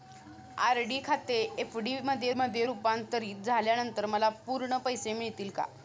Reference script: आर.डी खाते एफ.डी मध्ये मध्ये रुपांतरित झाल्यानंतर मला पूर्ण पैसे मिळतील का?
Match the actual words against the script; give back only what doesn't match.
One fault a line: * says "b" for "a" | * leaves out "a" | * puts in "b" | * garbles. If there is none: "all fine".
all fine